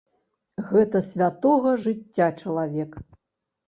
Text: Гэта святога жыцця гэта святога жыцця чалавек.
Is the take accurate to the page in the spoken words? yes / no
no